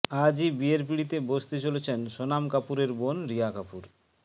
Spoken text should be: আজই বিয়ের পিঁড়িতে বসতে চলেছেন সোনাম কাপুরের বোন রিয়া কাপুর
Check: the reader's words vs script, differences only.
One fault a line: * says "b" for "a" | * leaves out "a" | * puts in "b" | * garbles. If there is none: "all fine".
all fine